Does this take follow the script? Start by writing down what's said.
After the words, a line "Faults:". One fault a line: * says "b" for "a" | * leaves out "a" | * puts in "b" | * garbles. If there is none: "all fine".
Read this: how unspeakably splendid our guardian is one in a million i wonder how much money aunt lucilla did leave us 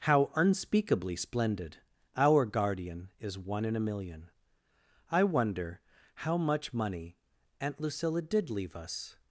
how unspeakably splendid our guardian is one in a million i wonder how much money aunt lucilla did leave us
Faults:
all fine